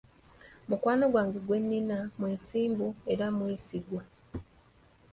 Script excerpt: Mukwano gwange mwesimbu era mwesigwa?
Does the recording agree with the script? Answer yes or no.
no